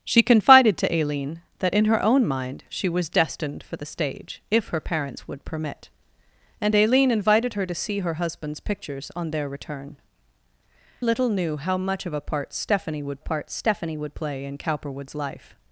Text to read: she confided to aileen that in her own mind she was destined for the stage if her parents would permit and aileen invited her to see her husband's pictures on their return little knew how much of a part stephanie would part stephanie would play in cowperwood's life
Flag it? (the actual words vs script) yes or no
no